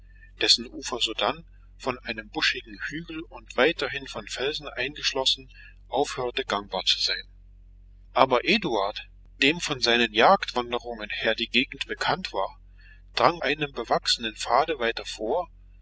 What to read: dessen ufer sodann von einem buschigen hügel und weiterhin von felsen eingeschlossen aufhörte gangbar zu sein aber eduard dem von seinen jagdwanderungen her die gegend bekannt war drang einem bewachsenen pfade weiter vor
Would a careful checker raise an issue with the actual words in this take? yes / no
no